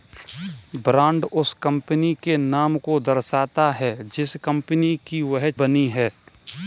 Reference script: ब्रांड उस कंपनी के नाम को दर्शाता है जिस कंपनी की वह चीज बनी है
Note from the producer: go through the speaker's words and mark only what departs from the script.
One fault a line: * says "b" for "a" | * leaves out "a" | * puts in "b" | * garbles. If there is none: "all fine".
* leaves out "चीज"